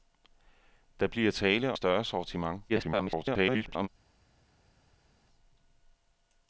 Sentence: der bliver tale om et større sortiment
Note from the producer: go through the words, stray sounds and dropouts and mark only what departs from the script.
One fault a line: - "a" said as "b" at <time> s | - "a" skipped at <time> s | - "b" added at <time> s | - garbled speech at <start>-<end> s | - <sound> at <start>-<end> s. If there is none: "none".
- "om" skipped at 1.7 s
- garbled speech at 2.7-3.9 s